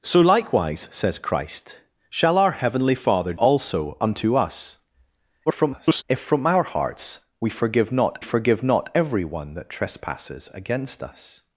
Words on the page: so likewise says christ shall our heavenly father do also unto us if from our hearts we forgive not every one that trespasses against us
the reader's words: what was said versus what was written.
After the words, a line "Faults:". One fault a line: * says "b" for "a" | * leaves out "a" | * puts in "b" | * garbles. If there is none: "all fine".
so likewise says christ shall our heavenly father also unto us [garbled] if from our hearts we forgive not forgive not every one that trespasses against us
Faults:
* leaves out "do"
* garbles
* puts in "forgive not"